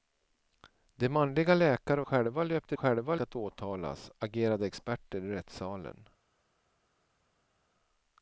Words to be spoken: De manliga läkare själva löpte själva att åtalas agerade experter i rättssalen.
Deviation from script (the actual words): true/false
false